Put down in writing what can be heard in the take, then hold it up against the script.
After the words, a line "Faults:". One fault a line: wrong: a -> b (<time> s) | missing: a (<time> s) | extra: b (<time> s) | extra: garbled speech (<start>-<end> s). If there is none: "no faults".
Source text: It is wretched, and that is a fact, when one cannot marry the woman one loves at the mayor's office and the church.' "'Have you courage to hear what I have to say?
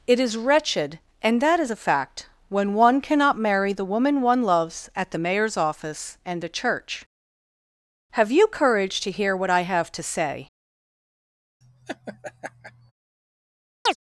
It is wretched, and that is a fact, when one cannot marry the woman one loves at the mayor's office and the church.' "'Have you courage to hear what I have to say?
Faults:
no faults